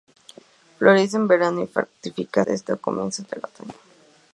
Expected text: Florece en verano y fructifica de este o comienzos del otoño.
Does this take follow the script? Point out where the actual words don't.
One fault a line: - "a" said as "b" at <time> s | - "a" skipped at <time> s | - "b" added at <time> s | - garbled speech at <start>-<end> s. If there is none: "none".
none